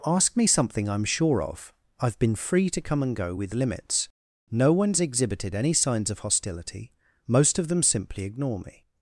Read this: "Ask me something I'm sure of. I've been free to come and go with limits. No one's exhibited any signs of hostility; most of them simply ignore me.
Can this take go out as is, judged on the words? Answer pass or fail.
pass